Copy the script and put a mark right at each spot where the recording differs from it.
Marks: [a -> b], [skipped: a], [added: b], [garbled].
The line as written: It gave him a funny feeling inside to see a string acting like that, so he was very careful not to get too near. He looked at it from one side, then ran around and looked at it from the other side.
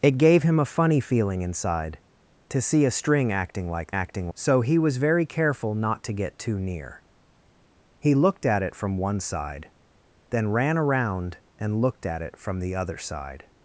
It gave him a funny feeling inside to see a string acting like [that, -> acting] so he was very careful not to get too near. He looked at it from one side, then ran around and looked at it from the other side.